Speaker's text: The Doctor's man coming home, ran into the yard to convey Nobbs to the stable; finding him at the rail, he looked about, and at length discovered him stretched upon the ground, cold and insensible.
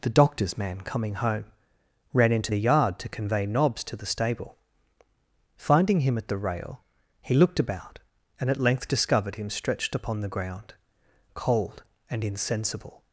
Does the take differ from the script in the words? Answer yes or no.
no